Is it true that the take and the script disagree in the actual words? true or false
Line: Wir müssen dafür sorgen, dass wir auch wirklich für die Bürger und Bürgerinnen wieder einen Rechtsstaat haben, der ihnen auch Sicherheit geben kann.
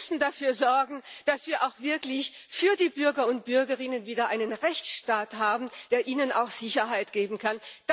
false